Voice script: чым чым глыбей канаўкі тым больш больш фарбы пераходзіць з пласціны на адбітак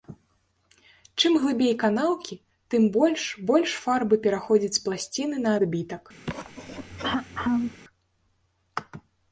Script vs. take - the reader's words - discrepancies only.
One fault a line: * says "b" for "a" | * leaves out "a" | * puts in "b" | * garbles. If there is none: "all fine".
* leaves out "чым"